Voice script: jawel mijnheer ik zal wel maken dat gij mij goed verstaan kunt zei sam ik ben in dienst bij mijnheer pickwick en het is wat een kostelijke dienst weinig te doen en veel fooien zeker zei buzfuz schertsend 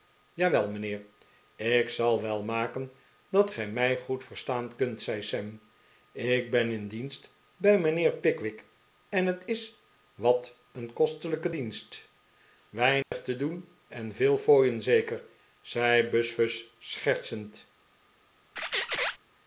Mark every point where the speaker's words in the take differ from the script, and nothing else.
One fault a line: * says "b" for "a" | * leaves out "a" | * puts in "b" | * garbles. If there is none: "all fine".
all fine